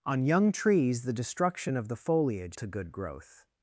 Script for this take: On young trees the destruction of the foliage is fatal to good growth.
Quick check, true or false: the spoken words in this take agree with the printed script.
false